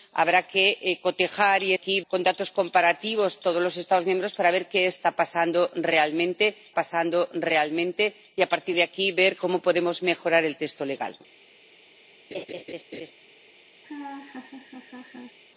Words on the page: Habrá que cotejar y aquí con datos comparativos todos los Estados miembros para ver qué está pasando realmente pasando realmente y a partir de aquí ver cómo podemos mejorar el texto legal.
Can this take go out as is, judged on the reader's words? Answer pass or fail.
pass